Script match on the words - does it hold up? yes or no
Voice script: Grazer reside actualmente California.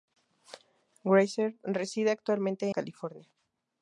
yes